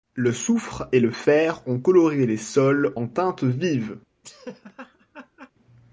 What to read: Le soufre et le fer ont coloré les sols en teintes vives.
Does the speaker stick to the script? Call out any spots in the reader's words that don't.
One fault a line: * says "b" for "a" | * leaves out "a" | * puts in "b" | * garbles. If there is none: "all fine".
all fine